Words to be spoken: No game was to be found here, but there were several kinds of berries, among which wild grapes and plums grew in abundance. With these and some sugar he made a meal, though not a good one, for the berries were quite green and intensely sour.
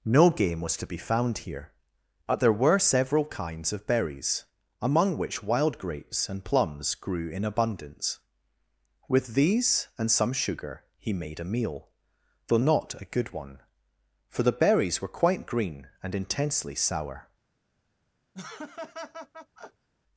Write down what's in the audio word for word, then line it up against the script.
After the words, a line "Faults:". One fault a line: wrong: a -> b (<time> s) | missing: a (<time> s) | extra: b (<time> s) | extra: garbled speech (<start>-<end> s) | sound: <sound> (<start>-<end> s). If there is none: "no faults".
No game was to be found here, but there were several kinds of berries, among which wild grapes and plums grew in abundance. With these and some sugar he made a meal, though not a good one, for the berries were quite green and intensely sour.
Faults:
sound: laugh (18.3-19.9 s)